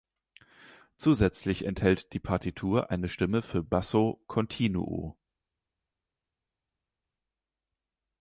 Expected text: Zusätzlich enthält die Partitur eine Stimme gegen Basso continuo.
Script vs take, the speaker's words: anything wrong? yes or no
yes